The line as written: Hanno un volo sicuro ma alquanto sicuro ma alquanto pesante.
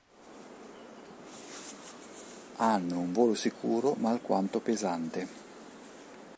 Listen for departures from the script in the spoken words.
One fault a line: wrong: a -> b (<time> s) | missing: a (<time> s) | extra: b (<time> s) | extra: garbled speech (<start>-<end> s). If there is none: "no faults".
missing: sicuro ma alquanto (4.6 s)